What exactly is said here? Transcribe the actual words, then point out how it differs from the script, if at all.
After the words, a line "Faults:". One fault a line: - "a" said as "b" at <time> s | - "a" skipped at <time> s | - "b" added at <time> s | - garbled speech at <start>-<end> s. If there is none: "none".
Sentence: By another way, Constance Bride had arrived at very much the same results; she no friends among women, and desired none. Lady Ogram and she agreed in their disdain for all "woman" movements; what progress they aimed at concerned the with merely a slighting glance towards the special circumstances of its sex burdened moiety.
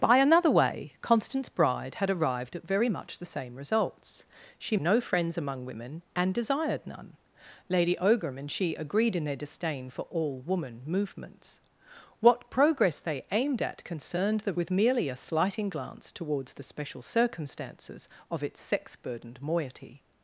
By another way, Constance Bride had arrived at very much the same results; she no friends among women, and desired none. Lady Ogram and she agreed in their disdain for all "woman" movements; what progress they aimed at concerned the with merely a slighting glance towards the special circumstances of its sex burdened moiety.
Faults:
none